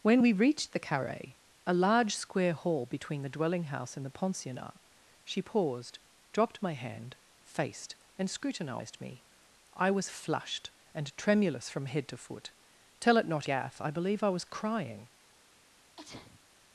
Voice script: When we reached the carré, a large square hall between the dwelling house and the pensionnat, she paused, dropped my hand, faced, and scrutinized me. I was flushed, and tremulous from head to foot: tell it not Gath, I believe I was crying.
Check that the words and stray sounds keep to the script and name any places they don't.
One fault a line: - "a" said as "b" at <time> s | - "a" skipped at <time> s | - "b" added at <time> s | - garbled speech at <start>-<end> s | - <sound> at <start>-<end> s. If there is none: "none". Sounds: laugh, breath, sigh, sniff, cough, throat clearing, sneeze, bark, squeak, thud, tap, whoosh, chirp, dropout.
- sneeze at 16.0-16.4 s